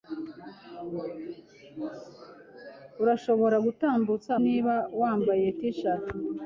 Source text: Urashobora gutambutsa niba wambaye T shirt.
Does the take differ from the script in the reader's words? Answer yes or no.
no